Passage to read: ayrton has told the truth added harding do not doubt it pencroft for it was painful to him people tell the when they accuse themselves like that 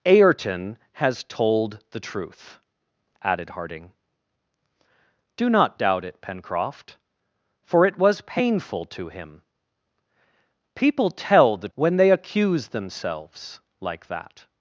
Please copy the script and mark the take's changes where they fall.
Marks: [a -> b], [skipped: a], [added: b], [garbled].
ayrton has told the truth added harding do not doubt it pencroft for it was painful to him people tell the when they accuse themselves like that